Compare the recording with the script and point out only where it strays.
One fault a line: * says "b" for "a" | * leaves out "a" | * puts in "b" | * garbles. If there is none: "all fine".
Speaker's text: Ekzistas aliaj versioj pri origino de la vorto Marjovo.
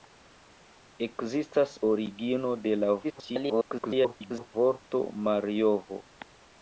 * leaves out "aliaj versioj pri"
* garbles